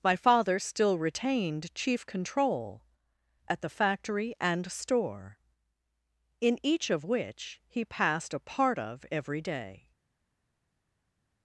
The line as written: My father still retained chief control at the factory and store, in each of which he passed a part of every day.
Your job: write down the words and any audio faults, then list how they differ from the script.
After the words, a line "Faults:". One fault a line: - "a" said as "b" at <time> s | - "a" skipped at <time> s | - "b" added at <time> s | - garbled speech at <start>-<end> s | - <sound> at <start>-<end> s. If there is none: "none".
My father still retained chief control at the factory and store, in each of which he passed a part of every day.
Faults:
none